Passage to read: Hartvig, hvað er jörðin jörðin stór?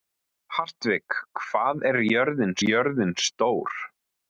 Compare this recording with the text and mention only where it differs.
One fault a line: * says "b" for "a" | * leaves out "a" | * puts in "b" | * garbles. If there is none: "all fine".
all fine